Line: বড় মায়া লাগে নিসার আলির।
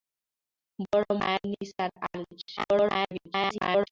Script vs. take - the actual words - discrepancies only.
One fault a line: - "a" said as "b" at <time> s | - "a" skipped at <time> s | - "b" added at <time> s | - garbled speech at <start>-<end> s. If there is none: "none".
- "লাগে" skipped at 1.4 s
- garbled speech at 2.6-3.9 s